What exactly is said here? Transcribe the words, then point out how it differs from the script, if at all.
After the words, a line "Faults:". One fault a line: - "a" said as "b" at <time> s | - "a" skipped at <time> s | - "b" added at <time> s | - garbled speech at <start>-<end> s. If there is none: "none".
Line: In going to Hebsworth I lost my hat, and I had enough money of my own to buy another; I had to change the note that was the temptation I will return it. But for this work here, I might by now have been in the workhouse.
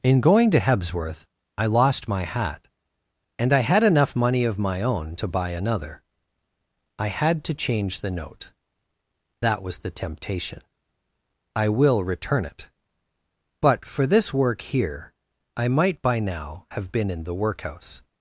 In going to Hebsworth I lost my hat, and I had enough money of my own to buy another; I had to change the note that was the temptation I will return it. But for this work here, I might by now have been in the workhouse.
Faults:
none